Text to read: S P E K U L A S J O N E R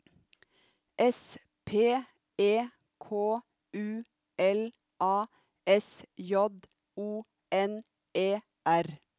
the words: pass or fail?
pass